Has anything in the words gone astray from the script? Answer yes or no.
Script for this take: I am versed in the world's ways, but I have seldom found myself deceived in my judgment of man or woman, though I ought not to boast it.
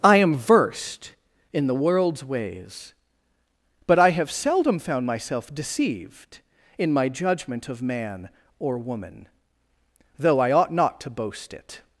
no